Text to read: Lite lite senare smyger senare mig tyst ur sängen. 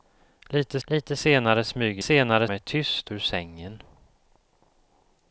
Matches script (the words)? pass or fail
pass